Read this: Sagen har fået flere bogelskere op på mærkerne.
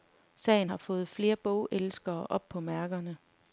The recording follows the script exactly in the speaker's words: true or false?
true